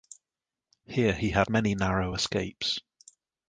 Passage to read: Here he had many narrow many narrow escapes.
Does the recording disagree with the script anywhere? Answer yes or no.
yes